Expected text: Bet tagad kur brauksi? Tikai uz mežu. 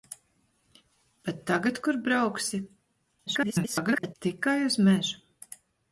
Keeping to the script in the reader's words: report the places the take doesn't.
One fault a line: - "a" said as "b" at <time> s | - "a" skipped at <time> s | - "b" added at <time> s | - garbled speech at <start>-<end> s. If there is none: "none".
- garbled speech at 3.3-4.1 s